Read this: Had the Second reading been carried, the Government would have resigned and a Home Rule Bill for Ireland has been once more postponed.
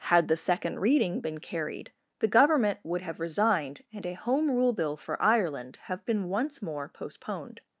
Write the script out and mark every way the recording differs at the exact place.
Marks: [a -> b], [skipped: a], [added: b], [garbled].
Had the Second reading been carried, the Government would have resigned and a Home Rule Bill for Ireland [has -> have] been once more postponed.